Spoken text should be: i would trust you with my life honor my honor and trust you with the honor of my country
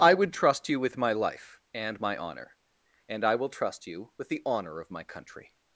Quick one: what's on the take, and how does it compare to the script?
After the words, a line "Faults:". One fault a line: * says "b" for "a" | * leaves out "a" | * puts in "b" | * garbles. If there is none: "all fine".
i would trust you with my life and my honor and i will trust you with the honor of my country
Faults:
* says "and" for "honor"
* puts in "i will"